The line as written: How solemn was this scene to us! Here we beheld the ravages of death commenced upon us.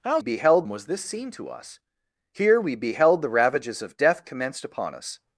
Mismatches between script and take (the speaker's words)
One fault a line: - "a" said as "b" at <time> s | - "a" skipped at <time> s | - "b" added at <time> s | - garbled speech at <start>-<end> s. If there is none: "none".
- "solemn" said as "beheld" at 0.2 s